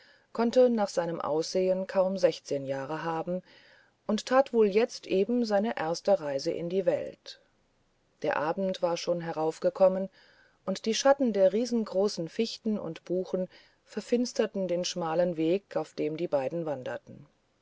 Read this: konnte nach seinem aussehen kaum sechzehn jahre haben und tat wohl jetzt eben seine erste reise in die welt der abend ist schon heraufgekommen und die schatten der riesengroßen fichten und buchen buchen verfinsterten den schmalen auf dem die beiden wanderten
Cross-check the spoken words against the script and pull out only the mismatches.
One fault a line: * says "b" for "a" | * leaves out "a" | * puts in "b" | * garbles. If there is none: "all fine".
* says "war" for "ist"
* leaves out "buchen"
* puts in "weg"